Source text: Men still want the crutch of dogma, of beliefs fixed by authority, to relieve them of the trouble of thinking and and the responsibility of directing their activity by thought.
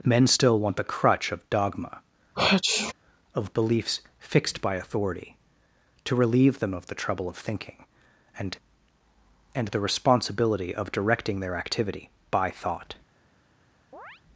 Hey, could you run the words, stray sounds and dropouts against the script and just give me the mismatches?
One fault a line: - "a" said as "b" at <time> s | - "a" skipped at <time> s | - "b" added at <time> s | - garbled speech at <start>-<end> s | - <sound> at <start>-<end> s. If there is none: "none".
- sneeze at 2.3-2.9 s
- chirp at 13.9-14.2 s